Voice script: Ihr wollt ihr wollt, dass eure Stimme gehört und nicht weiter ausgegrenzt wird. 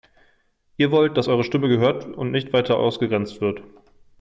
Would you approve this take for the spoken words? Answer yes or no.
no